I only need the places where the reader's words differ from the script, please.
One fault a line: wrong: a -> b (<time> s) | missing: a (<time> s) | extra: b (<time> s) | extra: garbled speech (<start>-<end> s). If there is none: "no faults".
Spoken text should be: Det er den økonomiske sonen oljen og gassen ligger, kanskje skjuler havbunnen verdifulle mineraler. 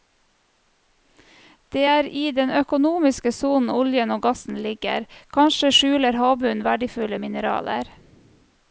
extra: i (2.2 s)